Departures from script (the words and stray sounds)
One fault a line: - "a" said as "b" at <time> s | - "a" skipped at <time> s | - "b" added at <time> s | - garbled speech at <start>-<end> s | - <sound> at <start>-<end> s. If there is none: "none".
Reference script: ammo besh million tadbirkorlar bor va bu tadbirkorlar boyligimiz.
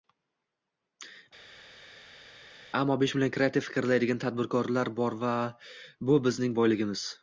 - "kreativ fikrlaydigan" added at 3.4 s
- "tadbirkorlar" said as "bizning" at 6.3 s